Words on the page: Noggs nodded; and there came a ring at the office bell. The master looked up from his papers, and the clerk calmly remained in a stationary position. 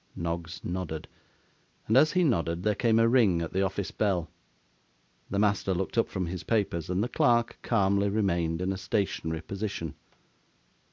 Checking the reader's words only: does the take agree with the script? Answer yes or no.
no